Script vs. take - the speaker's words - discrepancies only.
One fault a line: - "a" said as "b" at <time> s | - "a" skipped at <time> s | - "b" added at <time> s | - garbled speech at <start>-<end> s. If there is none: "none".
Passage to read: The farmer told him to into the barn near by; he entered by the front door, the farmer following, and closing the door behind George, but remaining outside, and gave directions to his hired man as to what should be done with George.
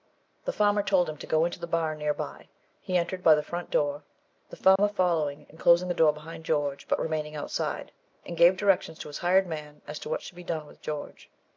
- "go" added at 1.3 s